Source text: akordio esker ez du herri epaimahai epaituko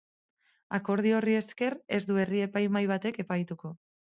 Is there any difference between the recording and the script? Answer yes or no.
yes